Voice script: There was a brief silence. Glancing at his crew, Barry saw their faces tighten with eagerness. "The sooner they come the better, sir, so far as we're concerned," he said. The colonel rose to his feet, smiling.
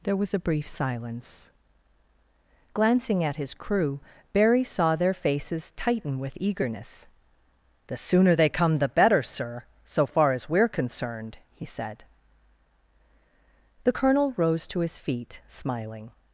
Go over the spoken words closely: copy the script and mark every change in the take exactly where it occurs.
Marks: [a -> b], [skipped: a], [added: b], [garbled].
There was a brief silence. Glancing at his crew, Barry saw their faces tighten with eagerness. "The sooner they come the better, sir, so far as we're concerned," he said. The colonel rose to his feet, smiling.